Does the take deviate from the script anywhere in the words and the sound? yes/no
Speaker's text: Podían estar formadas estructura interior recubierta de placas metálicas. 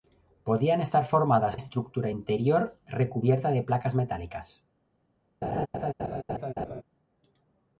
yes